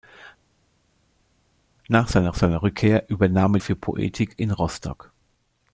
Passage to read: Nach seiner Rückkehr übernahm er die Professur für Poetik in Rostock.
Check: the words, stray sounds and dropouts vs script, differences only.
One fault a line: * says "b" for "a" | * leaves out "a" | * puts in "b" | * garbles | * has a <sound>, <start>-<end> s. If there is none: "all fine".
* puts in "seiner"
* leaves out "die Professur"